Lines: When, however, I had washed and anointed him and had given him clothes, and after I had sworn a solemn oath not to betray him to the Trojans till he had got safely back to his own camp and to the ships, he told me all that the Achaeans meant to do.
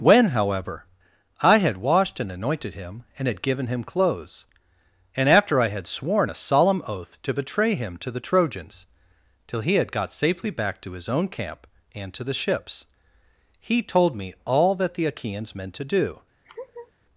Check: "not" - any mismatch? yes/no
yes